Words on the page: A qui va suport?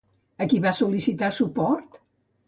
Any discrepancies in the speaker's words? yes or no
yes